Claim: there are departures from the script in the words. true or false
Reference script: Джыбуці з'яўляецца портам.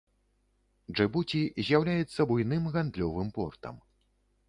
true